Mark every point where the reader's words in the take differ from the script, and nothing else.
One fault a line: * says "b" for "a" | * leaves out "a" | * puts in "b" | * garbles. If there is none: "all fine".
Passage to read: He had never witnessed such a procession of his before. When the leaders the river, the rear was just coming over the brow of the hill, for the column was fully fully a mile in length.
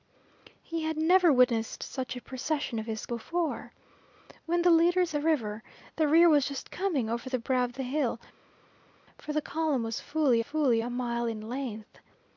all fine